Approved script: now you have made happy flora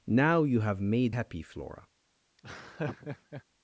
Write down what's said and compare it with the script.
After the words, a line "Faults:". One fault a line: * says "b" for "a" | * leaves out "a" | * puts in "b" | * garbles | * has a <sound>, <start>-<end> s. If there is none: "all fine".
now you have made happy flora
Faults:
* has a laugh, 2.4-3.4 s